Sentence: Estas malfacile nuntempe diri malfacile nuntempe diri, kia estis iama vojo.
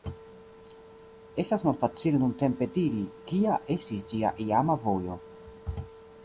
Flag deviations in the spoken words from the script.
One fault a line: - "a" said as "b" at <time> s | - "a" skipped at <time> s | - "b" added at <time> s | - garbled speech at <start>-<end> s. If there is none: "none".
- "malfacile nuntempe diri" skipped at 3.0 s
- "ĝia" added at 4.2 s